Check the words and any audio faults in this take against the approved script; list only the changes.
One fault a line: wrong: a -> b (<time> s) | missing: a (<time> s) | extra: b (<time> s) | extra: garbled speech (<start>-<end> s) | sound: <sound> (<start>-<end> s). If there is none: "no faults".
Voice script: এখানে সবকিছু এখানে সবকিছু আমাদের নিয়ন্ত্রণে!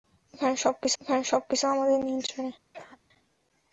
sound: cough (2.7-3.0 s)